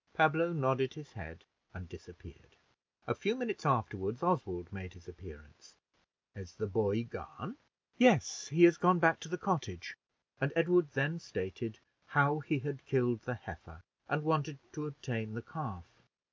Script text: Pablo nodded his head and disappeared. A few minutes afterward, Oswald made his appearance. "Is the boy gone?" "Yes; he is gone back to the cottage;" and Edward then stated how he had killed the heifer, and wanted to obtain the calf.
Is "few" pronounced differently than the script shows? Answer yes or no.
no